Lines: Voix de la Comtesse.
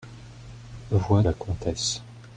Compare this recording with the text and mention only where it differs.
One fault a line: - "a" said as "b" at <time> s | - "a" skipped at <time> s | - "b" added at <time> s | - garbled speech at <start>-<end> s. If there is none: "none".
- "de" skipped at 1.2 s